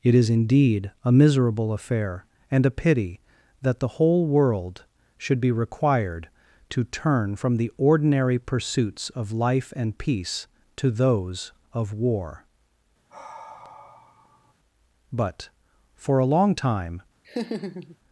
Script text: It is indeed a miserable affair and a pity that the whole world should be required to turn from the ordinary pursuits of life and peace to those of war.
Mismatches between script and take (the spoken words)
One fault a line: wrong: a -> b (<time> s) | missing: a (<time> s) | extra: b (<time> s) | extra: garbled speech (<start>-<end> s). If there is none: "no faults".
extra: But for a long time (15.1 s)